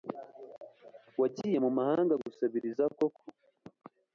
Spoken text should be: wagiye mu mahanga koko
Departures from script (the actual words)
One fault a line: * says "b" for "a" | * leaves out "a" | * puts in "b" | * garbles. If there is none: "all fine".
* puts in "gusabiriza"